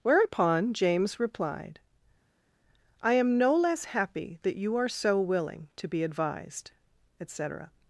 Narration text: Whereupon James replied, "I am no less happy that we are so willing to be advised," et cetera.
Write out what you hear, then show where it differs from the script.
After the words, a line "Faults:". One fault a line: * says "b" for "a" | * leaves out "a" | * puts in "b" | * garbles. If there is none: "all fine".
Whereupon James replied, "I am no less happy that you are so willing to be advised," et cetera.
Faults:
* says "you" for "we"